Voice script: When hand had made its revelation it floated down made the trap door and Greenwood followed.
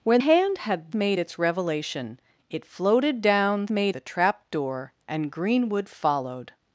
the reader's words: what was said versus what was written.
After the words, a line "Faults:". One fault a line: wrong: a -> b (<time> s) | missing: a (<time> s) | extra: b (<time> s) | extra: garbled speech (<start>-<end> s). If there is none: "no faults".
When hand had made its revelation it floated down made the trap door and Greenwood followed.
Faults:
no faults